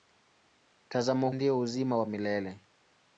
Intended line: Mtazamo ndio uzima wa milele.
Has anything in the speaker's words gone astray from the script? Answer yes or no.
no